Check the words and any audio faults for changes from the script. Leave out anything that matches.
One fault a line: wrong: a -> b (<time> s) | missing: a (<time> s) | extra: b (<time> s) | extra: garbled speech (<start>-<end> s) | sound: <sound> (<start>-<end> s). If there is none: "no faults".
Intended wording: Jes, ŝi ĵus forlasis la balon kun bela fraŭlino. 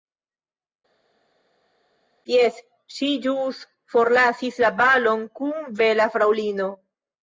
no faults